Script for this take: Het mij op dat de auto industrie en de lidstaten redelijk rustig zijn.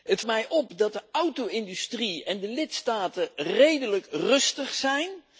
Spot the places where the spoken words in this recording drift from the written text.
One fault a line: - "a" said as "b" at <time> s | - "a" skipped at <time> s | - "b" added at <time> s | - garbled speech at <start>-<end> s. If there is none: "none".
none